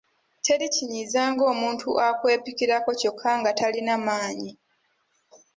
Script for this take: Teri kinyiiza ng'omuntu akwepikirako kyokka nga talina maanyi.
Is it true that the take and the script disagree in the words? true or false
false